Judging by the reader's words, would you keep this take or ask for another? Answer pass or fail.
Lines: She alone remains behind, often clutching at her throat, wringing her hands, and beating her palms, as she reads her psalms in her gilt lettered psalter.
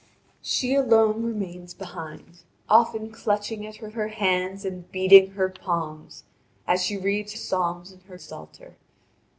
fail